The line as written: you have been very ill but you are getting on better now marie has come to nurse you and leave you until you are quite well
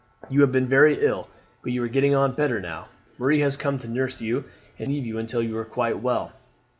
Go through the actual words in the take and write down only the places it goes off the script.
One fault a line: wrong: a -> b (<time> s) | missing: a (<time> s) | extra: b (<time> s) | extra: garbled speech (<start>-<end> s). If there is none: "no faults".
no faults